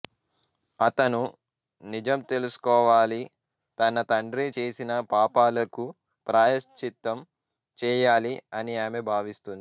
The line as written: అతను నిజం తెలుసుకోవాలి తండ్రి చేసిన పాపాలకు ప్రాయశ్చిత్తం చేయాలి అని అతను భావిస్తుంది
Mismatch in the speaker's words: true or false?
true